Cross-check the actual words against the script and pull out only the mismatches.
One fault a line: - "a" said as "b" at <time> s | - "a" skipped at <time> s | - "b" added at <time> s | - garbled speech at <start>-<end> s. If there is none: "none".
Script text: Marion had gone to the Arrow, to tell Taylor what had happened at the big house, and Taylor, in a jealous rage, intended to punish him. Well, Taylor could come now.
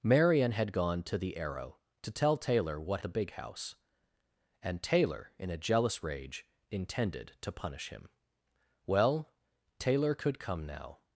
- "had happened at" skipped at 3.0 s